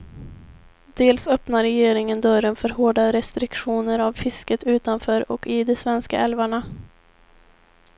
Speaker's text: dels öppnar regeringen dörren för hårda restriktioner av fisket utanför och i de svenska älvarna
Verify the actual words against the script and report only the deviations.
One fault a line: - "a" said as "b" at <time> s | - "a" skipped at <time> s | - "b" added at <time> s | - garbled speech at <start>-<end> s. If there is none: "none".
none